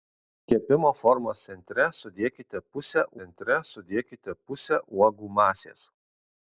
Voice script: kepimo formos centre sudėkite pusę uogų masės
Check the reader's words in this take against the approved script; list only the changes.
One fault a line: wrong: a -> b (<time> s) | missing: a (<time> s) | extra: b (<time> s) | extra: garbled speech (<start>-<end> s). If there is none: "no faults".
extra: centre sudėkite pusę (3.2 s)